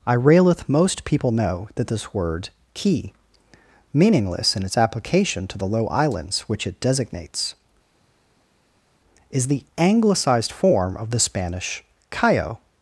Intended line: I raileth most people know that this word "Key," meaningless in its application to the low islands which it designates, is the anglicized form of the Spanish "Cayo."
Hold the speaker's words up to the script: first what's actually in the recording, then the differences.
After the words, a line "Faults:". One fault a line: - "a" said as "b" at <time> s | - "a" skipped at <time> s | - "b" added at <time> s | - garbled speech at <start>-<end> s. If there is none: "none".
I raileth most people know that this word "Key," meaningless in its application to the low islands which it designates, is the anglicized form of the Spanish "Cayo."
Faults:
none